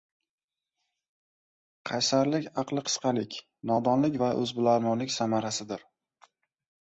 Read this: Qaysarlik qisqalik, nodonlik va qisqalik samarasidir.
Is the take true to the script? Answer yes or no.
no